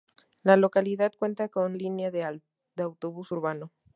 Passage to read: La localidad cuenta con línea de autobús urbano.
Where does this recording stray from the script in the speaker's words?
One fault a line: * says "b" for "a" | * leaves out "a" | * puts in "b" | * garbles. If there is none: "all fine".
all fine